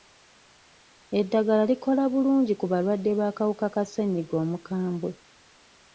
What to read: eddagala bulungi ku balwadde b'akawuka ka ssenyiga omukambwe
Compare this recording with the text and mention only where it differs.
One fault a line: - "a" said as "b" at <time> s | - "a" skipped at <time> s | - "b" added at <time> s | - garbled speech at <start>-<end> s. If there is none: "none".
- "likola" added at 1.7 s